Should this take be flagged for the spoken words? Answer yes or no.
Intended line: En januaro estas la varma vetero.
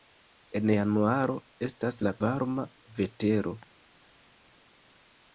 no